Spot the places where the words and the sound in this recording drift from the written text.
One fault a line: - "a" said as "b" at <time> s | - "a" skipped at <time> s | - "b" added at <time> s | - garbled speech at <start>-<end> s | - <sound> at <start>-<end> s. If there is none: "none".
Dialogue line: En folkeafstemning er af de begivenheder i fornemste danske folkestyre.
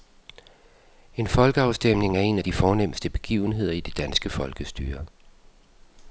- "en" added at 2.2 s
- "fornemste" added at 2.5 s
- "fornemste" said as "det" at 3.8 s